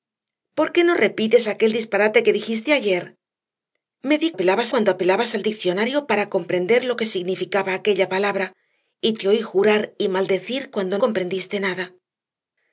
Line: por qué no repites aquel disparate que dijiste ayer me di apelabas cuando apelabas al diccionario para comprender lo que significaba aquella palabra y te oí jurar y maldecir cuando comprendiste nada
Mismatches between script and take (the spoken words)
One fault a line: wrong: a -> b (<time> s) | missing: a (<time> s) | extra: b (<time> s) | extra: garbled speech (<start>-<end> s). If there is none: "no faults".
no faults